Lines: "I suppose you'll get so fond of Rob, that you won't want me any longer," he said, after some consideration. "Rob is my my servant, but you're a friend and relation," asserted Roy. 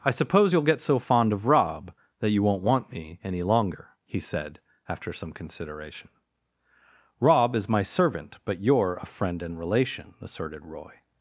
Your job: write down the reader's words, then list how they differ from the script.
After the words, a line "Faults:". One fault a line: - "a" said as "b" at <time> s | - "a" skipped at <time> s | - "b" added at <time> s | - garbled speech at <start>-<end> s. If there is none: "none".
"I suppose you'll get so fond of Rob, that you won't want me any longer," he said, after some consideration. "Rob is my servant, but you're a friend and relation," asserted Roy.
Faults:
- "my" skipped at 7.8 s